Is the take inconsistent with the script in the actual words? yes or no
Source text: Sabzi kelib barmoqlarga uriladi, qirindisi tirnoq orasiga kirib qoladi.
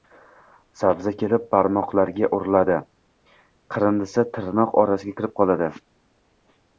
no